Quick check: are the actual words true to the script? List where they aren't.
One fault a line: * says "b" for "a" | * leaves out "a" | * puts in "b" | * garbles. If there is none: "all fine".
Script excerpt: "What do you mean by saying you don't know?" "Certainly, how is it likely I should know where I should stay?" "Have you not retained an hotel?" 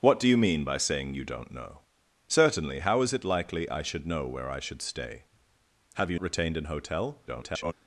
* leaves out "not"
* garbles